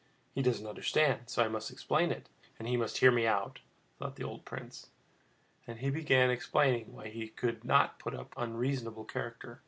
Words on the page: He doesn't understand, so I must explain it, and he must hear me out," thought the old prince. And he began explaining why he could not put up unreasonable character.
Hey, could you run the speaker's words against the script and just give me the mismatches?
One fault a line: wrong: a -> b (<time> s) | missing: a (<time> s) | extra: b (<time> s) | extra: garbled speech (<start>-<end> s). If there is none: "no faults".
no faults